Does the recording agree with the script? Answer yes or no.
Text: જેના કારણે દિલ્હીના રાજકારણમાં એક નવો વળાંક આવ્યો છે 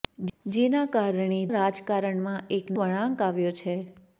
no